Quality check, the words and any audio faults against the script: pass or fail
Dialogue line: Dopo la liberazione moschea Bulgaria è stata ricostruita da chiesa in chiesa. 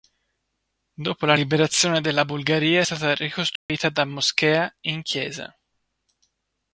fail